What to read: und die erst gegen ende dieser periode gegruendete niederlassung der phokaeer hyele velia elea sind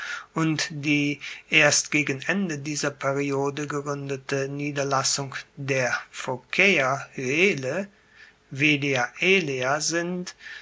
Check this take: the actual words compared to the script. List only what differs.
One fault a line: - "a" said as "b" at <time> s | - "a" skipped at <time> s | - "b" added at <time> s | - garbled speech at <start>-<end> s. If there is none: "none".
none